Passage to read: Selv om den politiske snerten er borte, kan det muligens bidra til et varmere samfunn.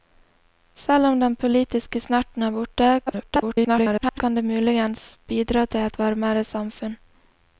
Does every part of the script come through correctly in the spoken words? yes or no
no